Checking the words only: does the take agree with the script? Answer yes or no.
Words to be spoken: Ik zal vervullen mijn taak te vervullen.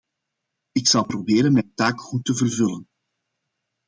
no